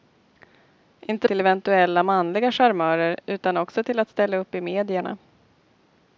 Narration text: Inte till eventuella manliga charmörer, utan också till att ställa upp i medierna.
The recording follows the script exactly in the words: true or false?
true